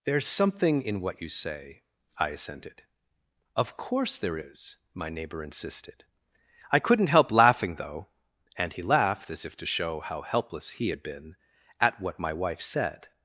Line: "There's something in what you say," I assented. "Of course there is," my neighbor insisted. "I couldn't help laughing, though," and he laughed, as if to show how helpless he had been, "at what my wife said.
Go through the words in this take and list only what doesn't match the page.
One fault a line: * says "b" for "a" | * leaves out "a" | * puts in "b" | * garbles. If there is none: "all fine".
all fine